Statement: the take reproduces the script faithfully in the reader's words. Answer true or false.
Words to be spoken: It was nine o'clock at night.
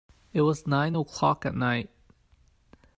true